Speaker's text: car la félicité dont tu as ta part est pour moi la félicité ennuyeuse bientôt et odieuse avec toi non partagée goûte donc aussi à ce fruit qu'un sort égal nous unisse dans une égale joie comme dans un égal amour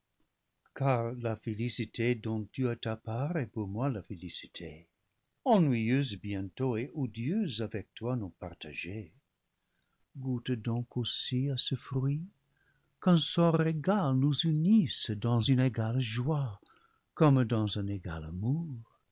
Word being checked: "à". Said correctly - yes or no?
yes